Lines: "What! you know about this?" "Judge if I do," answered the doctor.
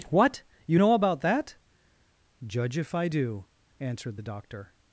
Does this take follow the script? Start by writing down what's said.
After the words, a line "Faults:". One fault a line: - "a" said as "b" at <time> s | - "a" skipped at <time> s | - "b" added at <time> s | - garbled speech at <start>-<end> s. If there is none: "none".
"What! you know about that?" "Judge if I do," answered the doctor.
Faults:
- "this" said as "that" at 1.2 s